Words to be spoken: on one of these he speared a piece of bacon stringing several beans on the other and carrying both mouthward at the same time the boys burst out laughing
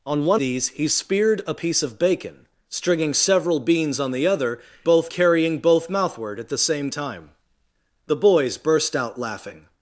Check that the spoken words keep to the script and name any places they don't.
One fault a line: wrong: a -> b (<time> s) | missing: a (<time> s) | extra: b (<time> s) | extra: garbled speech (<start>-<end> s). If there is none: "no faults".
missing: of (0.4 s)
wrong: and -> both (4.8 s)